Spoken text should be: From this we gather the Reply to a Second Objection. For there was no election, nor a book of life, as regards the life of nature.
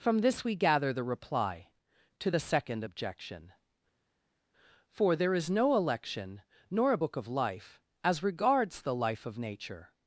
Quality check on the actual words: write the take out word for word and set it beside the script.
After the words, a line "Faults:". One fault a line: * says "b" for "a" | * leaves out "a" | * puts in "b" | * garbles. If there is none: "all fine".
From this we gather the Reply to the Second Objection. For there is no election, nor a book of life, as regards the life of nature.
Faults:
* says "the" for "a"
* says "is" for "was"